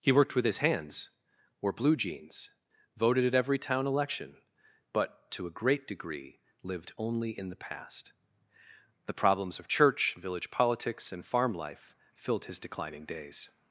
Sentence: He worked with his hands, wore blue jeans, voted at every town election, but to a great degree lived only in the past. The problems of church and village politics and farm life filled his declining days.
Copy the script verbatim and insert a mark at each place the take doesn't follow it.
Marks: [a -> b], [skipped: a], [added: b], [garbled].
He worked with his hands, wore blue jeans, voted at every town election, but to a great degree lived only in the past. The problems of church [skipped: and] village politics and farm life filled his declining days.